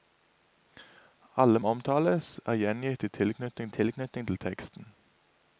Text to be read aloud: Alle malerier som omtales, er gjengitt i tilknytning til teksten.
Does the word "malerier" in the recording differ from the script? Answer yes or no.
yes